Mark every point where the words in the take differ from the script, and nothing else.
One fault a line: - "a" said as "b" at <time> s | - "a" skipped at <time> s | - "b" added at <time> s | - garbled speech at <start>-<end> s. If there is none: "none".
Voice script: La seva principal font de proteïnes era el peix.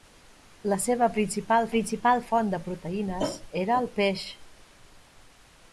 - "principal" added at 1.7 s